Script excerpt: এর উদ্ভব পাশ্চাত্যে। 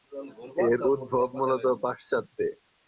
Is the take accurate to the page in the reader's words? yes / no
no